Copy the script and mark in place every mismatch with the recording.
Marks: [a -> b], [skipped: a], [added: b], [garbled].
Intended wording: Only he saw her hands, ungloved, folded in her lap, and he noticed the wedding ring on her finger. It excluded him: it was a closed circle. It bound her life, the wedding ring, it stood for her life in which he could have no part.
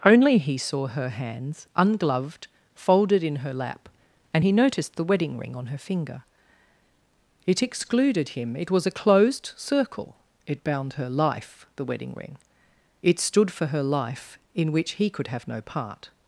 Only he saw her hands, ungloved, folded in her lap, and he noticed the wedding ring on her finger. It excluded him: it was a closed circle. It bound her life, the wedding ring, it stood for her life in which he could have no part.